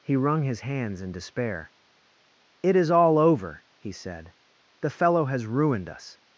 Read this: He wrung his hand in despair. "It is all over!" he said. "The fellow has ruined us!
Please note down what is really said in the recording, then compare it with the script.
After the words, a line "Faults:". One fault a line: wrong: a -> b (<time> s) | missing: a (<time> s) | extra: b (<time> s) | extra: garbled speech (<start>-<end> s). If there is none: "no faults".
He wrung his hands in despair. "It is all over!" he said. "The fellow has ruined us!
Faults:
wrong: hand -> hands (0.6 s)